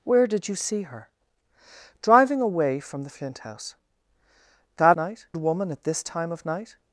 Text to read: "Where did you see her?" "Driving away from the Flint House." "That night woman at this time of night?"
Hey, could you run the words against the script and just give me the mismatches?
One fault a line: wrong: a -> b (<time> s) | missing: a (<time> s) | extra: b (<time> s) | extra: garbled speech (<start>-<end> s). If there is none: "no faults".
no faults